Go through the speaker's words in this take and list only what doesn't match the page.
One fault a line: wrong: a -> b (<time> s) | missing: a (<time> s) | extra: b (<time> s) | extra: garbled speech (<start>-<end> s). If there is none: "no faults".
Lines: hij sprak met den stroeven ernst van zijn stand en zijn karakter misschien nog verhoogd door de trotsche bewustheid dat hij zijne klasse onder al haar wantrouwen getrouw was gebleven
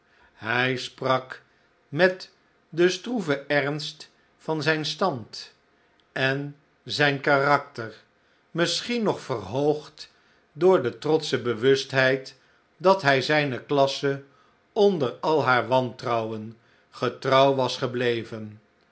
no faults